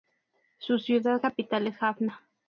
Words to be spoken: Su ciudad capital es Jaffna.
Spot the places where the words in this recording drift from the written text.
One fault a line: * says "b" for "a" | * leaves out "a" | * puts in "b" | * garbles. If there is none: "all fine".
all fine